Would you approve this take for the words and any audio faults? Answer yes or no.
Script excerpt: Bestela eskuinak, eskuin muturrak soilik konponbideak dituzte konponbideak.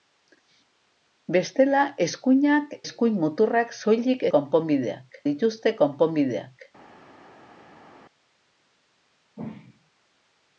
yes